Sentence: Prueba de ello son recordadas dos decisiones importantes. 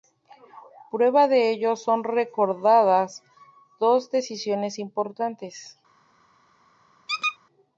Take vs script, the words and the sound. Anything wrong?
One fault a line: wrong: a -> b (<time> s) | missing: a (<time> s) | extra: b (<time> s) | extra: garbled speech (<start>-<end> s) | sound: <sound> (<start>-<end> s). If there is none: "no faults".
sound: squeak (7.1-7.4 s)